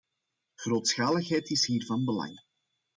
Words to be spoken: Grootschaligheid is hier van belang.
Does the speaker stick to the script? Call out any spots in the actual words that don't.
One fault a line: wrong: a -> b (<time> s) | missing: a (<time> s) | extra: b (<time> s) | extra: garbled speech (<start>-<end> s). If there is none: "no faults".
no faults